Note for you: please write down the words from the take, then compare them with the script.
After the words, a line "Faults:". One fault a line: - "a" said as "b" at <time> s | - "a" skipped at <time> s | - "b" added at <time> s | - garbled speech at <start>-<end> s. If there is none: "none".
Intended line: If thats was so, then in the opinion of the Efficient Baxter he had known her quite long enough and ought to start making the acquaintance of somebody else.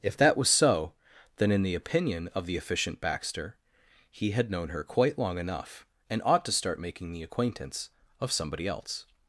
If that was so, then in the opinion of the Efficient Baxter he had known her quite long enough and ought to start making the acquaintance of somebody else.
Faults:
- "thats" said as "that" at 0.2 s